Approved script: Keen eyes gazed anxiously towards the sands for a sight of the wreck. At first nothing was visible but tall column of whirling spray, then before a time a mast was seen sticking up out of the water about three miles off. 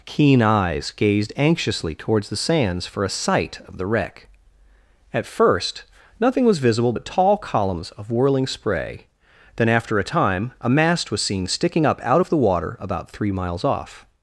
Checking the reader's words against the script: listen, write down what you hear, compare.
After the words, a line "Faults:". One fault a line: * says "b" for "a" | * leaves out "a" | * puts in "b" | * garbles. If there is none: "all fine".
Keen eyes gazed anxiously towards the sands for a sight of the wreck. At first nothing was visible but tall columns of whirling spray, then after a time a mast was seen sticking up out of the water about three miles off.
Faults:
* says "columns" for "column"
* says "after" for "before"